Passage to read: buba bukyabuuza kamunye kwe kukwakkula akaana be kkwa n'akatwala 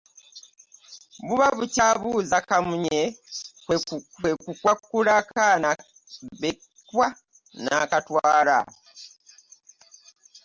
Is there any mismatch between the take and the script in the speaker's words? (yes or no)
no